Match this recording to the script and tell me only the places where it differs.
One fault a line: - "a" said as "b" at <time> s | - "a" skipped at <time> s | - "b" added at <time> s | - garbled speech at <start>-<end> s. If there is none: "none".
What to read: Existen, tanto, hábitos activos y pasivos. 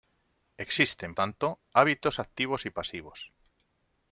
none